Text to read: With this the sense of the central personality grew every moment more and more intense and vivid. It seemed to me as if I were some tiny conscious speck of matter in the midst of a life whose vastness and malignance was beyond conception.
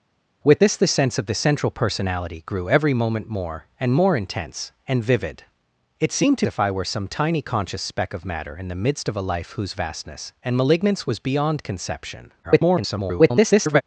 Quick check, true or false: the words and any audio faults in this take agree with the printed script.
false